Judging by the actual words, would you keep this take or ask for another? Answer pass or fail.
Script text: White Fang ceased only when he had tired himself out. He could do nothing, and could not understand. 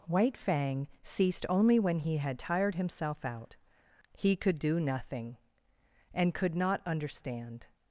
pass